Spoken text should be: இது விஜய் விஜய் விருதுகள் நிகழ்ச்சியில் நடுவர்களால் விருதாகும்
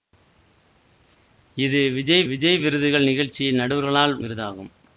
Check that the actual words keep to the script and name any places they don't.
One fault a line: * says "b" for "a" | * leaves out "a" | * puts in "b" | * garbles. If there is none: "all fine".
all fine